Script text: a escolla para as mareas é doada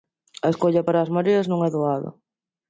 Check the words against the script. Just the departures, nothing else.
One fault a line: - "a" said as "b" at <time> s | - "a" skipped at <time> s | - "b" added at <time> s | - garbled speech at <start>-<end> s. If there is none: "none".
- "non" added at 1.5 s